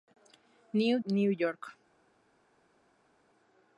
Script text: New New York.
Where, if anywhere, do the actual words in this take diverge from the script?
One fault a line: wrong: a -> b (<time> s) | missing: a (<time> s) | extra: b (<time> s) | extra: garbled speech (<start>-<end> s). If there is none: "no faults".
no faults